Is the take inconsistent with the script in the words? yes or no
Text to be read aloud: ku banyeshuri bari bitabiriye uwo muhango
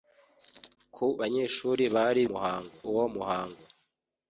yes